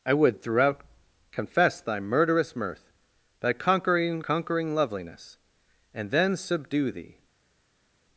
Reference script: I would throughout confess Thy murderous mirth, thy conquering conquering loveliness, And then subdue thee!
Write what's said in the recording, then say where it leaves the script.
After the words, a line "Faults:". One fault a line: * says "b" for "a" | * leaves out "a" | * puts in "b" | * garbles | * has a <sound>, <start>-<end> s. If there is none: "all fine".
I would throughout confess Thy murderous mirth, thy conquering conquering loveliness, And then subdue thee!
Faults:
all fine